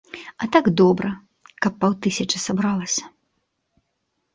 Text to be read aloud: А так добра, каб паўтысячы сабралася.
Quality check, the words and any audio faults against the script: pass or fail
pass